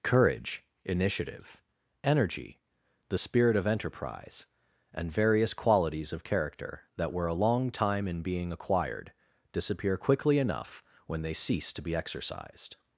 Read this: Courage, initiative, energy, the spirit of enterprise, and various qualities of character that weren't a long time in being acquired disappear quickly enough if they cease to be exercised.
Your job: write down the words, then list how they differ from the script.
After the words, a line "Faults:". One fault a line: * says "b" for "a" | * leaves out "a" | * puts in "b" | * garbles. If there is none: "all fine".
Courage, initiative, energy, the spirit of enterprise, and various qualities of character that were a long time in being acquired disappear quickly enough when they cease to be exercised.
Faults:
* says "were" for "weren't"
* says "when" for "if"